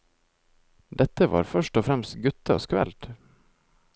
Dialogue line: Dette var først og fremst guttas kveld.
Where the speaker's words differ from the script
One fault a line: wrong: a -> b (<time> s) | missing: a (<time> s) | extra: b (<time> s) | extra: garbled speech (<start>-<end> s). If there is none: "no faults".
no faults